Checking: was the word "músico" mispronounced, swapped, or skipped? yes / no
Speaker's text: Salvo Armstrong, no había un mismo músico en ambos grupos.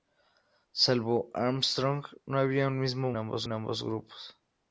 yes